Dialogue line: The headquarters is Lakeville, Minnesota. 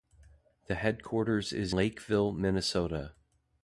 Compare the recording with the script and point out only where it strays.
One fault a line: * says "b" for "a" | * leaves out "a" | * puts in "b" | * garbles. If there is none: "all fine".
all fine